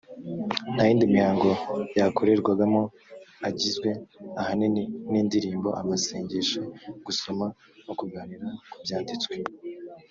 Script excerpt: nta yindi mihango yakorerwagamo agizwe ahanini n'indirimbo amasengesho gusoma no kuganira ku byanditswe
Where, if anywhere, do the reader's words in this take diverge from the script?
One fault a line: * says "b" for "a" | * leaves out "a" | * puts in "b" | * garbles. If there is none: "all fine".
all fine